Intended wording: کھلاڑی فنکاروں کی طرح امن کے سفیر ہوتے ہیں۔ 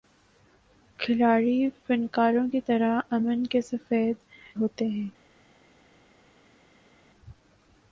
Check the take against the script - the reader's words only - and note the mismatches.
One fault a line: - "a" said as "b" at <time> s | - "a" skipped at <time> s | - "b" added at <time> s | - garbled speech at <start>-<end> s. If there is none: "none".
none